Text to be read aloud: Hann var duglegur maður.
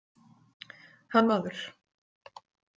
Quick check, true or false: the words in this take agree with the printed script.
false